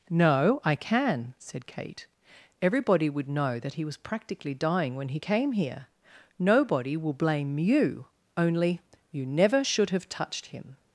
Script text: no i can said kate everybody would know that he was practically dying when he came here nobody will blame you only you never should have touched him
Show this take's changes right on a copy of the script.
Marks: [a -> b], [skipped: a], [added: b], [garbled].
no i can said kate everybody would know that he was practically dying when he came here nobody will blame you only you never should have touched him